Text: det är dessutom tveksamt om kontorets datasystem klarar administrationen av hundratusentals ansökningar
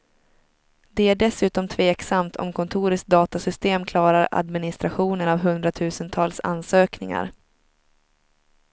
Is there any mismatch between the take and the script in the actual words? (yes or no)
no